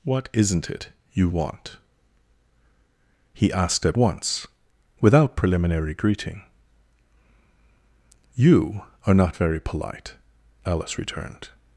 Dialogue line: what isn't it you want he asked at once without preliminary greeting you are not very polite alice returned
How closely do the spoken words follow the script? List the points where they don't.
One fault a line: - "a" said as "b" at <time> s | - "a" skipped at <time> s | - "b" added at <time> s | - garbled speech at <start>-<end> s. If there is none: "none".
none